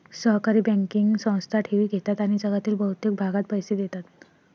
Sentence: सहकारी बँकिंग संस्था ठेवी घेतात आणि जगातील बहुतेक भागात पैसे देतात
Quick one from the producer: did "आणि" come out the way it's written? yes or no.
yes